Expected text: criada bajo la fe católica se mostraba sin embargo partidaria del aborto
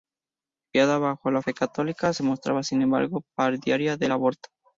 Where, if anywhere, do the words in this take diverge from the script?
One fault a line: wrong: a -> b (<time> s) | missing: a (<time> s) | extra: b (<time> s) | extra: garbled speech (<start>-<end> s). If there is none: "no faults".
no faults